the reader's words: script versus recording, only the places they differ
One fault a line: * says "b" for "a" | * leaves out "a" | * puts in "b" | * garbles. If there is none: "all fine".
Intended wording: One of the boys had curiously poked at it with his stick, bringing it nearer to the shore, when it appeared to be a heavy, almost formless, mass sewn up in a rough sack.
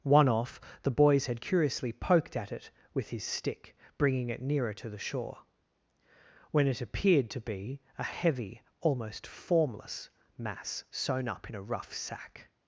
* says "off" for "of"